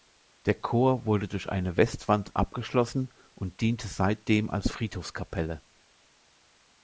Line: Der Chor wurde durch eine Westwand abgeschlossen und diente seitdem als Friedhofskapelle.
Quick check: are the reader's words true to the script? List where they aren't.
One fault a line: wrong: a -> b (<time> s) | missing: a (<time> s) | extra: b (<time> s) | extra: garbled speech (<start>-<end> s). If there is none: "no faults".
no faults